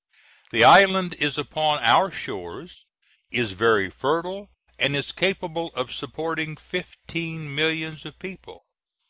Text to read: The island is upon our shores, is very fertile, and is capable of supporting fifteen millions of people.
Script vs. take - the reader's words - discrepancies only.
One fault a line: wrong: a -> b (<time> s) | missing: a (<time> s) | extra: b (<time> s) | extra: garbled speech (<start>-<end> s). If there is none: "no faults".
no faults